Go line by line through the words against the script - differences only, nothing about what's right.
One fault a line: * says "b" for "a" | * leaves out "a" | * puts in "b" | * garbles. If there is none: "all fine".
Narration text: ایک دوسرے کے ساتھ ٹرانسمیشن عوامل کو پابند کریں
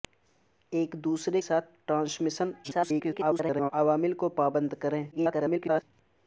* leaves out "کے"
* garbles
* garbles